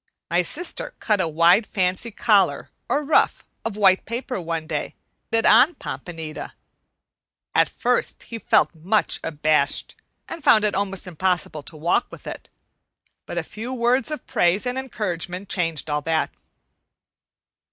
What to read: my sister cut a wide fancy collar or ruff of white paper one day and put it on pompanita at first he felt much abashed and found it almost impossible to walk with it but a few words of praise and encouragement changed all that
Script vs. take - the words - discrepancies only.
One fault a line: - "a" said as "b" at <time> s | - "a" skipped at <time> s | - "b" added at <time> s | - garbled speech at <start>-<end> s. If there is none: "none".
- "and put" skipped at 5.0 s